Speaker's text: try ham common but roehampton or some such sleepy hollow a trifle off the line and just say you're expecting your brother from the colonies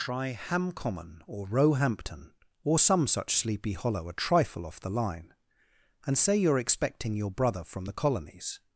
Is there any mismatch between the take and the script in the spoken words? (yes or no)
yes